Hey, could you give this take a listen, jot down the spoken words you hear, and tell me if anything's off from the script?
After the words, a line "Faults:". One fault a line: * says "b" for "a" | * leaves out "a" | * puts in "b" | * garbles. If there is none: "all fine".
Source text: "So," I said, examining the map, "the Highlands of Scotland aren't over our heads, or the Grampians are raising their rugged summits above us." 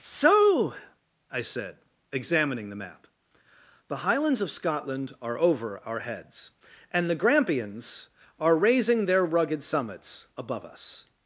"So," I said, examining the map, "the Highlands of Scotland are over our heads, and the Grampians are raising their rugged summits above us."
Faults:
* says "are" for "aren't"
* says "and" for "or"